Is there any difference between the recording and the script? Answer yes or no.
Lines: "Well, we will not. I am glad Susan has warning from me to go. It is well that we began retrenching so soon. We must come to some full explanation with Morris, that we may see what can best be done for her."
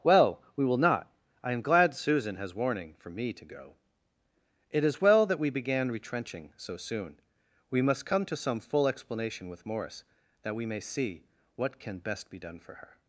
yes